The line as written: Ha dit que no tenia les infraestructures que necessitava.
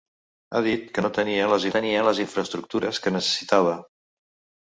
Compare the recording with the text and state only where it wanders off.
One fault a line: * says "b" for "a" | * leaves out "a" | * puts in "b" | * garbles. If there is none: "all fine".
* puts in "tenia les"